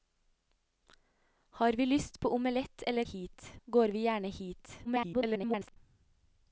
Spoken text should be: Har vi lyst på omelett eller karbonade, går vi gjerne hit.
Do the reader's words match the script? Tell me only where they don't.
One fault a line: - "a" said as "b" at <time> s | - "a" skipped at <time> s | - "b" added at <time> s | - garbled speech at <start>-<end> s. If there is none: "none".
- "karbonade" said as "hit" at 3.0 s
- garbled speech at 4.8-5.8 s